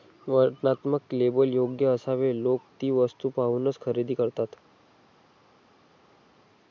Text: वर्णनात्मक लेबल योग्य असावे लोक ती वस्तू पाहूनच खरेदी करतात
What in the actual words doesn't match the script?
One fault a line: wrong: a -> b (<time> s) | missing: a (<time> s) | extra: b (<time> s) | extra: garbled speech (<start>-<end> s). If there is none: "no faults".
no faults